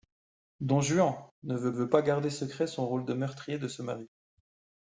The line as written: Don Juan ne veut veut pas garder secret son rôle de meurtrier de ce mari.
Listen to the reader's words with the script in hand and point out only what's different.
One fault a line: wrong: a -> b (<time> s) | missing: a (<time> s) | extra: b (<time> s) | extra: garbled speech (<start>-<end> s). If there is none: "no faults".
no faults